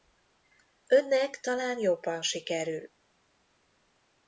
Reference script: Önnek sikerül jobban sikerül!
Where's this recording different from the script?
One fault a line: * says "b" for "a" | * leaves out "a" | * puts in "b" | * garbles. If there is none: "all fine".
* says "talán" for "sikerül"